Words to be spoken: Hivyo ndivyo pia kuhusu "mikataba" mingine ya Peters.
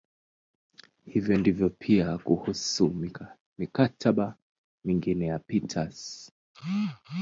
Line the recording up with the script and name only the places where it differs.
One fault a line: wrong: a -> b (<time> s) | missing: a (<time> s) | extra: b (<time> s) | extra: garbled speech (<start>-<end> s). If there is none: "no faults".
no faults